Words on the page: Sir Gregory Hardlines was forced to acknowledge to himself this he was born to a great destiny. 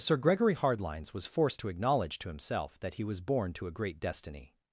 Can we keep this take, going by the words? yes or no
no